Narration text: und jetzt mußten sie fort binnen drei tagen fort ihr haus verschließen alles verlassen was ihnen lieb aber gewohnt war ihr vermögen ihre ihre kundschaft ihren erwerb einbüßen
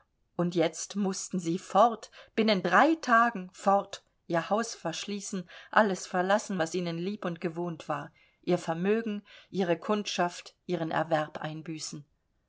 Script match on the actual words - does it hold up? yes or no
no